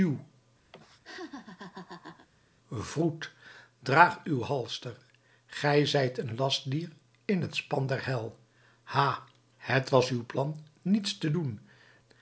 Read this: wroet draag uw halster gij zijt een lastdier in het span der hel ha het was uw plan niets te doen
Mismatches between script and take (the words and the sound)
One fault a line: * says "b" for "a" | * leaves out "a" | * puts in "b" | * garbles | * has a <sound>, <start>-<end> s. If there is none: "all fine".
* has a laugh, 0.7-2.3 s